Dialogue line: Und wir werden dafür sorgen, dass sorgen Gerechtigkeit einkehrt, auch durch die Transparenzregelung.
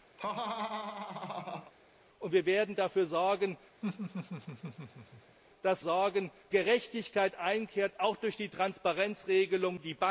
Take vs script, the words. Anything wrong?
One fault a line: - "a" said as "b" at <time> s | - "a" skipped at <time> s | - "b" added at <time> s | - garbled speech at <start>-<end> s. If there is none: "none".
none